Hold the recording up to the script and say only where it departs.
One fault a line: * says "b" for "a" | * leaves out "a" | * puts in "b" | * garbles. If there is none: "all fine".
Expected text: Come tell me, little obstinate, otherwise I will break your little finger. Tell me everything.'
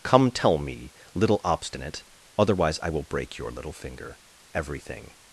* leaves out "Tell me"